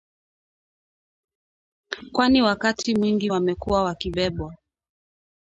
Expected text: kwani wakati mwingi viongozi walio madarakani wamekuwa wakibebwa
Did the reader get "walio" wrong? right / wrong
wrong